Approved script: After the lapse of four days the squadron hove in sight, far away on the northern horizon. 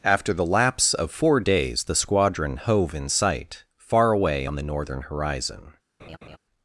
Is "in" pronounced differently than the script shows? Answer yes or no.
no